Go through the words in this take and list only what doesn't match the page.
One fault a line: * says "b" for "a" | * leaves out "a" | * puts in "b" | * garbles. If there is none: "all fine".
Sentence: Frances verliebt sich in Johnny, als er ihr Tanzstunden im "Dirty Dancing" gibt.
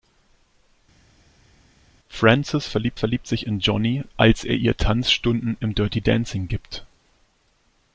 * puts in "verliebt"